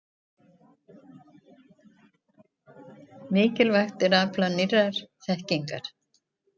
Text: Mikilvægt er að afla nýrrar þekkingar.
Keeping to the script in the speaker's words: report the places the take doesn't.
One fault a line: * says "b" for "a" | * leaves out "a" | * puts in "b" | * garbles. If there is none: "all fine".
all fine